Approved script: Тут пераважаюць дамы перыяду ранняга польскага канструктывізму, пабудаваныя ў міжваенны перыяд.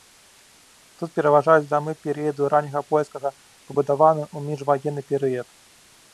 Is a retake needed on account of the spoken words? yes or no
yes